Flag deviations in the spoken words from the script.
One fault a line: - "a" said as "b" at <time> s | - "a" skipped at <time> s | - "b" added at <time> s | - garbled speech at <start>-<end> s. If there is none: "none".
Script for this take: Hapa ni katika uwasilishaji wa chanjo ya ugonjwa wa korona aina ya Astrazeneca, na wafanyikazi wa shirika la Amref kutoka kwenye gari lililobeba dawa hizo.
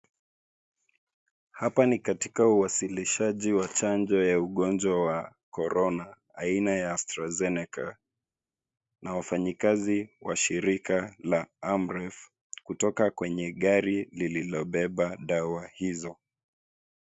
none